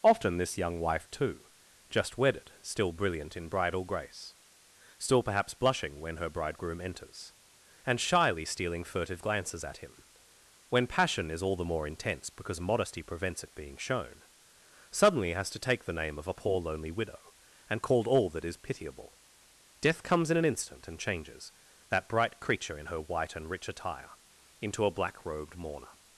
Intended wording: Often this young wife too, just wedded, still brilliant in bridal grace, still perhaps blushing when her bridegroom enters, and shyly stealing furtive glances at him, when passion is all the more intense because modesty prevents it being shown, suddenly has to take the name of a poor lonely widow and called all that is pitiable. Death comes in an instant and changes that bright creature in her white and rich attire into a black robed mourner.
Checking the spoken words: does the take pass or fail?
pass